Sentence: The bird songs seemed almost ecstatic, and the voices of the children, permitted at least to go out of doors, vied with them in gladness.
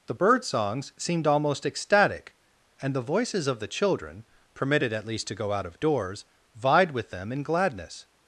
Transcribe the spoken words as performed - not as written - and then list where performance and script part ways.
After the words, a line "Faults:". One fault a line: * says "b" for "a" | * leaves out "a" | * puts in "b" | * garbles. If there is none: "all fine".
The bird songs seemed almost ecstatic, and the voices of the children, permitted at least to go out of doors, vied with them in gladness.
Faults:
all fine